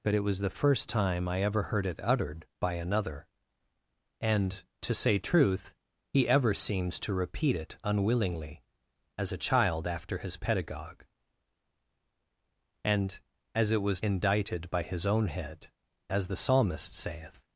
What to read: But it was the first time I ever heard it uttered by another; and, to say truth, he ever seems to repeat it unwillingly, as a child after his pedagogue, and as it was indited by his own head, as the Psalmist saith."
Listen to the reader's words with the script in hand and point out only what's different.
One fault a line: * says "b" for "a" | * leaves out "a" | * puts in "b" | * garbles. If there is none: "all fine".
all fine